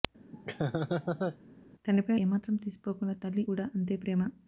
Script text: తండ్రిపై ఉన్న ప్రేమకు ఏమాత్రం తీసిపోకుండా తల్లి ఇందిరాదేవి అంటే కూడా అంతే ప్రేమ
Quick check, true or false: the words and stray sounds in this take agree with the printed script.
false